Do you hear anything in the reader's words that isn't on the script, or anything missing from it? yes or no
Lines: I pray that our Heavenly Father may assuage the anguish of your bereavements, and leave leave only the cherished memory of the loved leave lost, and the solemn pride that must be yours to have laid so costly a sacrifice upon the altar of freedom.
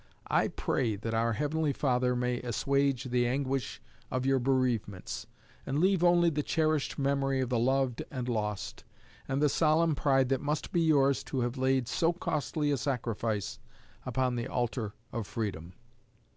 yes